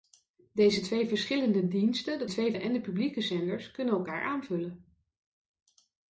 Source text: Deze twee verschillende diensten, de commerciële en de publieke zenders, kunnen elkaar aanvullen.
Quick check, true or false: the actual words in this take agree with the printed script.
false